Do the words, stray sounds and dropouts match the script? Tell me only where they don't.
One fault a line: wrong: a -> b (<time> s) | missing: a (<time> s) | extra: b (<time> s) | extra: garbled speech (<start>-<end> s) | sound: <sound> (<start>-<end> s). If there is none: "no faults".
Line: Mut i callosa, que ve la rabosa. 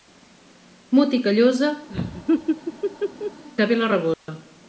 sound: laugh (1.9-3.4 s)
sound: dropout (4.1-4.3 s)